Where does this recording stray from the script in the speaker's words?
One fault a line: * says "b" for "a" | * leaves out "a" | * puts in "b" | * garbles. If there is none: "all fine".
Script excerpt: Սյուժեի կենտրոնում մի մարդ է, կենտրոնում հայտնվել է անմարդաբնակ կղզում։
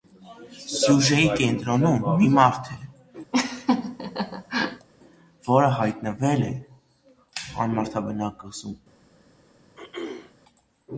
* says "որը" for "կենտրոնում"